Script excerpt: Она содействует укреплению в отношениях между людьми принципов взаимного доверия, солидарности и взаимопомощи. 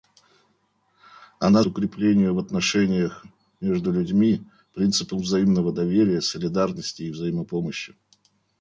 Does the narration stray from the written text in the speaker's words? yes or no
yes